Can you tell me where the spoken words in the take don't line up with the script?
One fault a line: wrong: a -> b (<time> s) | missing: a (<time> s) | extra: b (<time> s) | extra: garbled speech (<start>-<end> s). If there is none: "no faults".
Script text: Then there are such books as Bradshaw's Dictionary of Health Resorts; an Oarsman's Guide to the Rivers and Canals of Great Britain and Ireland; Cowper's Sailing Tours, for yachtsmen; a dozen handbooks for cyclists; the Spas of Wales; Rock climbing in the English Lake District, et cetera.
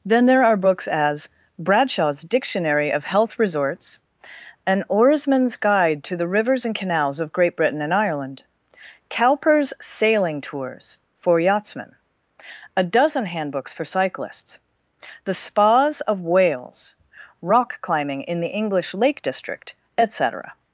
missing: such (0.6 s)